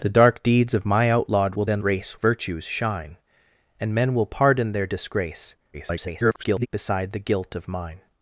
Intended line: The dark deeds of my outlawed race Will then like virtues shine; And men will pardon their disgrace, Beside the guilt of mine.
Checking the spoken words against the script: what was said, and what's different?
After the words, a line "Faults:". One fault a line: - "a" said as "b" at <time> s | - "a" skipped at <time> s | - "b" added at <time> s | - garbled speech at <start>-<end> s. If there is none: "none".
The dark deeds of my outlawed Will then race virtues shine; And men will pardon their disgrace, [garbled] Beside the guilt of mine.
Faults:
- "race" skipped at 1.6 s
- "like" said as "race" at 1.8 s
- garbled speech at 5.7-6.7 s